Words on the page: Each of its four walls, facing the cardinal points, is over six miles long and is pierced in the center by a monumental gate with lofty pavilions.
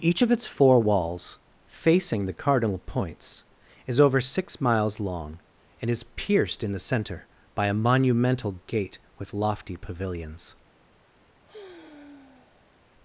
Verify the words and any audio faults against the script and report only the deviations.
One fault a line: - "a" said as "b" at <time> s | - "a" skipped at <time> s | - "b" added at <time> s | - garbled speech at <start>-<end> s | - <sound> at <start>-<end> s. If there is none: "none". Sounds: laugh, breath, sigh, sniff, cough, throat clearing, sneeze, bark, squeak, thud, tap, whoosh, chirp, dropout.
- sigh at 11.4-12.7 s